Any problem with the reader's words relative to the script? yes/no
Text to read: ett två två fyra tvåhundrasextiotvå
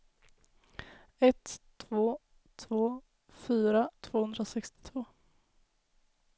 no